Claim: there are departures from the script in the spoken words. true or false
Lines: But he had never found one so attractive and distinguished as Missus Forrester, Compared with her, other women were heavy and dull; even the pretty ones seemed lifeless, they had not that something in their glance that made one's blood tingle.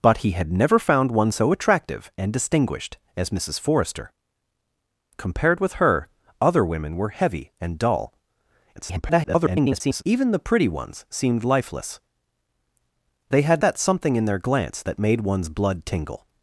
true